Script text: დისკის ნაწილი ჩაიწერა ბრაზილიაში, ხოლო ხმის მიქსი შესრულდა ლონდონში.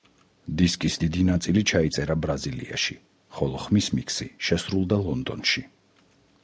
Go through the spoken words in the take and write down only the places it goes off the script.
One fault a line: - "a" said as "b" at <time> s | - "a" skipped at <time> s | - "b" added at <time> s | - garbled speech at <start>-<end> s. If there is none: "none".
- "დიდი" added at 1.0 s